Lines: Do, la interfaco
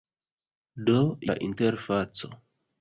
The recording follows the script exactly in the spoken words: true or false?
true